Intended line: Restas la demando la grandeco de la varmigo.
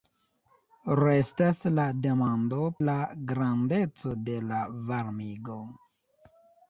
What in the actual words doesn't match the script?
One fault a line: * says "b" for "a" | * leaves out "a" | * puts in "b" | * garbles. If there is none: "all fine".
all fine